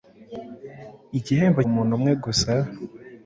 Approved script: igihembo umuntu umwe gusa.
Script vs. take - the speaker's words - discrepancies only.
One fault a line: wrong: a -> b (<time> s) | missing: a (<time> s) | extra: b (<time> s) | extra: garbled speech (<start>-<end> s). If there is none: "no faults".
no faults